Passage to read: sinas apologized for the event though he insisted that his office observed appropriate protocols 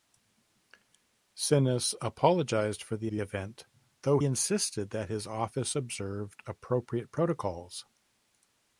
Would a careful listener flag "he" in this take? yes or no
yes